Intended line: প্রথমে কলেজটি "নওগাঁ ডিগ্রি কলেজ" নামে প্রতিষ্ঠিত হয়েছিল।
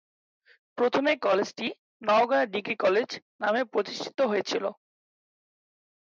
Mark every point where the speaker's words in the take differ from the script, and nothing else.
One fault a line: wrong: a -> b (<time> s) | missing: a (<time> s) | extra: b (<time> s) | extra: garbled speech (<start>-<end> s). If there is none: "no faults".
no faults